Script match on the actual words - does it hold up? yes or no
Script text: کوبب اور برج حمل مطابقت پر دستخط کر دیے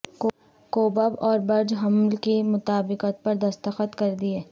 no